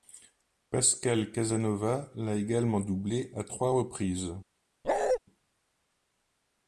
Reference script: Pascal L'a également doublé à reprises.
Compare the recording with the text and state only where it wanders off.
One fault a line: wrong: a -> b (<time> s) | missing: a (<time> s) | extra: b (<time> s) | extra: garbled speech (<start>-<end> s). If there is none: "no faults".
extra: Casanova (1.3 s)
extra: trois (3.4 s)